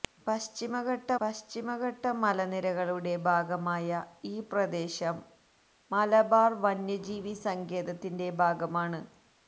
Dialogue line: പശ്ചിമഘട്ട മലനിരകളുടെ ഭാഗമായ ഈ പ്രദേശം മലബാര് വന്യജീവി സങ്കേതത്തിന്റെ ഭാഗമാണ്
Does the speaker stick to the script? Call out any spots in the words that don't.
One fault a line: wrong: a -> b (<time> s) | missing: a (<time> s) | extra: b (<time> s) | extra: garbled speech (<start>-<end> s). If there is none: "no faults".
extra: പശ്ചിമഘട്ട (1.2 s)